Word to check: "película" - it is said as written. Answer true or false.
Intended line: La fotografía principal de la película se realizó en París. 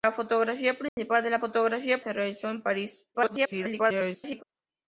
false